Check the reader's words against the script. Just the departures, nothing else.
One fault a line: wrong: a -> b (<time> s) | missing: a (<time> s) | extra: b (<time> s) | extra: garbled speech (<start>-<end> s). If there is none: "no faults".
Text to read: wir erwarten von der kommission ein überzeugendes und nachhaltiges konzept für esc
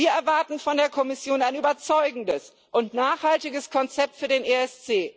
extra: den (4.3 s)